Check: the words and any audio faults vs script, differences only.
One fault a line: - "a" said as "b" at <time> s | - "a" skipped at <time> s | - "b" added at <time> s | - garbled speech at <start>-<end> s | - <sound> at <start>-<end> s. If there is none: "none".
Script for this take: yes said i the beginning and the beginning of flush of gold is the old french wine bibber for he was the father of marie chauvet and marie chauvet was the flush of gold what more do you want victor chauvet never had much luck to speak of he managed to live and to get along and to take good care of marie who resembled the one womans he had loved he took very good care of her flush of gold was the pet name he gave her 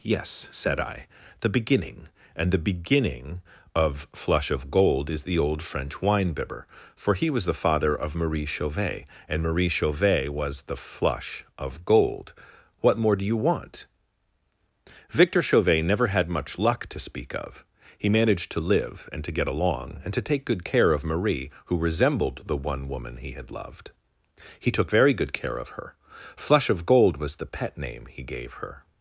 - "womans" said as "woman" at 22.9 s